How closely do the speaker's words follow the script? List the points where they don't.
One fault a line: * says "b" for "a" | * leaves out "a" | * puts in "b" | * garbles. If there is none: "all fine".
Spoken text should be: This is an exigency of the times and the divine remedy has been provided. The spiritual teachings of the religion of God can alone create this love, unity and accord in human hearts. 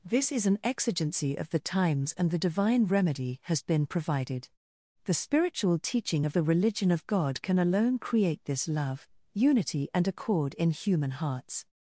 * says "teaching" for "teachings"